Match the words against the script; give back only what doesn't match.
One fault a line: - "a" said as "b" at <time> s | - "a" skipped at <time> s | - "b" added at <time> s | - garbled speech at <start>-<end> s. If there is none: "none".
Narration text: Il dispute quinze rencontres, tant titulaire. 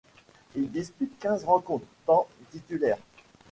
none